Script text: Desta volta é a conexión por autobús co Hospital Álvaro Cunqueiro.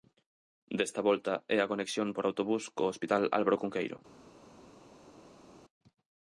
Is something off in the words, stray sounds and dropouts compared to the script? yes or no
no